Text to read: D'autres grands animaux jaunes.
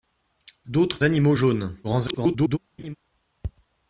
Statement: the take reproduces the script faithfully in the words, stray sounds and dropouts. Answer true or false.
false